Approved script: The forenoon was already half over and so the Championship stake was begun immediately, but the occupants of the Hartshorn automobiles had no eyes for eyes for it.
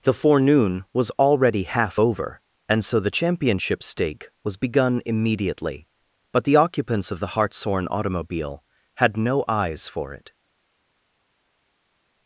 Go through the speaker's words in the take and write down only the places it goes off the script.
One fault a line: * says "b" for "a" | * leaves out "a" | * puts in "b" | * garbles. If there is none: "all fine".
* says "automobile" for "automobiles"
* leaves out "eyes for"